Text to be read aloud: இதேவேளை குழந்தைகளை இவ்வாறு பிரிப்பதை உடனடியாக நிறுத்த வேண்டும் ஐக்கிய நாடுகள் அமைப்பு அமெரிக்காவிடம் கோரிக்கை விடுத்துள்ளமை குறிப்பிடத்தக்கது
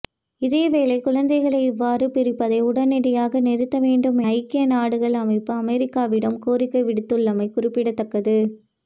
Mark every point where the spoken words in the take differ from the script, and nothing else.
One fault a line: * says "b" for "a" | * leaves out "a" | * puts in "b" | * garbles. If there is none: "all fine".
all fine